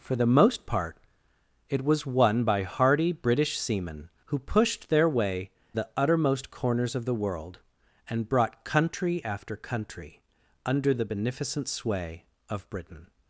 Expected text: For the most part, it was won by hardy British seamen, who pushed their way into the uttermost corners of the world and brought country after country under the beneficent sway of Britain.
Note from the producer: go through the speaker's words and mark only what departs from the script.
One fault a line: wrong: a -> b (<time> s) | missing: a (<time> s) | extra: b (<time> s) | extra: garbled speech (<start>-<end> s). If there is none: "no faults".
missing: into (5.5 s)